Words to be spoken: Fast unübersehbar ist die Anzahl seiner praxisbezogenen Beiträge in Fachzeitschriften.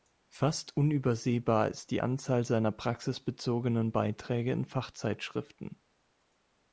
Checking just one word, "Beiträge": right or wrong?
right